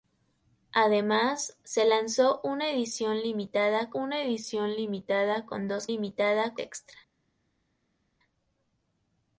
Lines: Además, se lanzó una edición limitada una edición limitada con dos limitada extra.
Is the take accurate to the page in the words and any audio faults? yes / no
yes